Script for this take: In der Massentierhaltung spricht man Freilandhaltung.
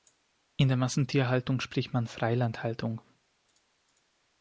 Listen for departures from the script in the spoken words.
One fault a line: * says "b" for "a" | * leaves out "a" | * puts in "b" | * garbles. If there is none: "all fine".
all fine